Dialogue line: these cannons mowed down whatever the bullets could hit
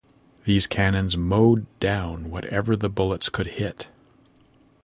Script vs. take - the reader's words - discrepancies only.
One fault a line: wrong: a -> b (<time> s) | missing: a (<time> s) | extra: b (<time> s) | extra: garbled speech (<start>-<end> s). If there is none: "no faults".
no faults